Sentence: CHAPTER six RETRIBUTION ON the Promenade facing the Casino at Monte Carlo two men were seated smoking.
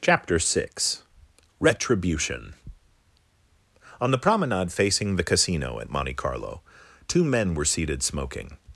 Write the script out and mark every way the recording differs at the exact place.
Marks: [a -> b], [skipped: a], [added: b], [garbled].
CHAPTER six RETRIBUTION ON the Promenade facing the Casino at Monte Carlo two men were seated smoking.